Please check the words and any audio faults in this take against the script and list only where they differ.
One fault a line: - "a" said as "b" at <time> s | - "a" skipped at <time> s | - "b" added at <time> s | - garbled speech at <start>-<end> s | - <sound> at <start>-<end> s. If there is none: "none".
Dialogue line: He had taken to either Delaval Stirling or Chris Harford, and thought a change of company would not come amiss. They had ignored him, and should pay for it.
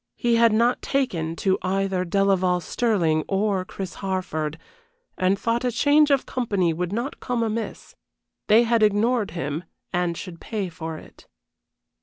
- "not" added at 0.5 s